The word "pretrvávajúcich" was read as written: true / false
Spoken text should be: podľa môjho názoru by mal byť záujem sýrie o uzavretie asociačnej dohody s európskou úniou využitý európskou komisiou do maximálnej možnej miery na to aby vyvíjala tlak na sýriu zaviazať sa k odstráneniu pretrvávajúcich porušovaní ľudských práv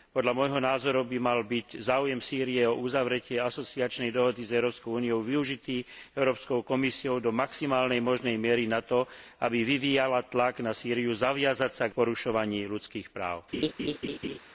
false